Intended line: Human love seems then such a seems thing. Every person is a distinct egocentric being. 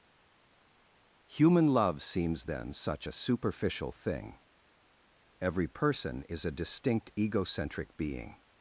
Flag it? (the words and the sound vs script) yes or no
yes